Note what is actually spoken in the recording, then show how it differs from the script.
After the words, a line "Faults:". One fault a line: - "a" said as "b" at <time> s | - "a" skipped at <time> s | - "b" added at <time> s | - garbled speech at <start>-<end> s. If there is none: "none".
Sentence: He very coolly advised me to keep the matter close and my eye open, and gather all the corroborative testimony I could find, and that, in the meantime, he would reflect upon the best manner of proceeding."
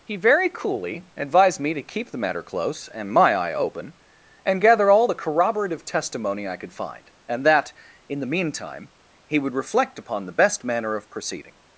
He very coolly advised me to keep the matter close and my eye open, and gather all the corroborative testimony I could find, and that, in the meantime, he would reflect upon the best manner of proceeding."
Faults:
none